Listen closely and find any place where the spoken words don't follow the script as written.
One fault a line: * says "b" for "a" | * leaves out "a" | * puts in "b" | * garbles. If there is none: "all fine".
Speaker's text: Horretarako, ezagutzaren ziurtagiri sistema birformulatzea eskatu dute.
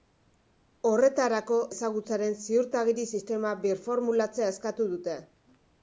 all fine